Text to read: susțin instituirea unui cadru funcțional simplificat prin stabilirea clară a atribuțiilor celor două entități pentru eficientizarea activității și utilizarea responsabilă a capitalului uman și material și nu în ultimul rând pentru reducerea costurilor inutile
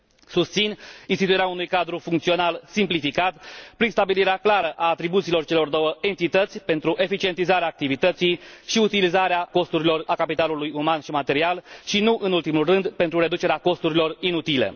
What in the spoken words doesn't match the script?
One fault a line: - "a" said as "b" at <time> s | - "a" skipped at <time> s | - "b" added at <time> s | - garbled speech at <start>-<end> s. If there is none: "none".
- "responsabilă" said as "costurilor" at 9.5 s